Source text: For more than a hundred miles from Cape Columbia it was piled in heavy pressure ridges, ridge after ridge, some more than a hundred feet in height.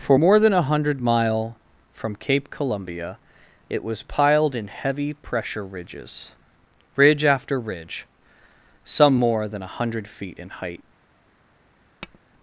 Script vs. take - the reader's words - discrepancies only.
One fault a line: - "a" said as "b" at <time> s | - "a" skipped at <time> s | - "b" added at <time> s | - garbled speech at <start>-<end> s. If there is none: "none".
- "miles" said as "mile" at 1.0 s